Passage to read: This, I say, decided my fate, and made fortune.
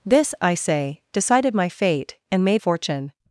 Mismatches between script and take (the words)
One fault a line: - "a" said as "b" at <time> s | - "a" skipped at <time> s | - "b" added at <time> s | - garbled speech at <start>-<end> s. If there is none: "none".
none